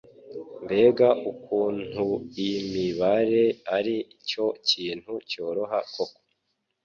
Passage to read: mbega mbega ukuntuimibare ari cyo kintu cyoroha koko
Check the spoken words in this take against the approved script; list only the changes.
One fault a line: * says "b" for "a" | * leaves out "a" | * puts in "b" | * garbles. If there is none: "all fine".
* leaves out "mbega"